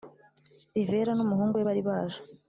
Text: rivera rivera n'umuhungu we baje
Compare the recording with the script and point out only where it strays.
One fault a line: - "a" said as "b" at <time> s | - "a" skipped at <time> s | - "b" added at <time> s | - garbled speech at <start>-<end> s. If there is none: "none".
- "rivera" skipped at 1.1 s
- "bari" added at 1.7 s